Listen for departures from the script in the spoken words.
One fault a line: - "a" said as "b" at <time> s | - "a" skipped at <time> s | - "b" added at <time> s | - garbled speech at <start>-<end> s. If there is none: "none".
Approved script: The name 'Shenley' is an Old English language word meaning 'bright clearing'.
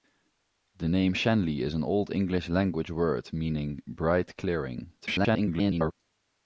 - garbled speech at 5.0-5.9 s